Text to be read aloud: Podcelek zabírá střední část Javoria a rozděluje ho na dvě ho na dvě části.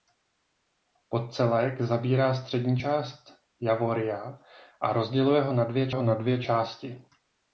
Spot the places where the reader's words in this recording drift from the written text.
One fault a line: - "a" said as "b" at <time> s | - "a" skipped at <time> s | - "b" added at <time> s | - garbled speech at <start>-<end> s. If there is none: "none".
none